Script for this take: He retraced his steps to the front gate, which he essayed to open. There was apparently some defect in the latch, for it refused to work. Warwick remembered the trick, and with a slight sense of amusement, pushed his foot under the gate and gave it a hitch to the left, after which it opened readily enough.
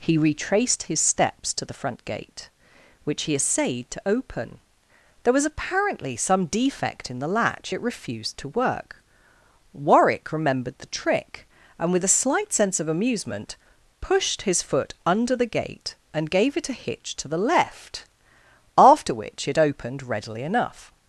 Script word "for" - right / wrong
wrong